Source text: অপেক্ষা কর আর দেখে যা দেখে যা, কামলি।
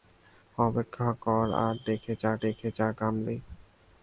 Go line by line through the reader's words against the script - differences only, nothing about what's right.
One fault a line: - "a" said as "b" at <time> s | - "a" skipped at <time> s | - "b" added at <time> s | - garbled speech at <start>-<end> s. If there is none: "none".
none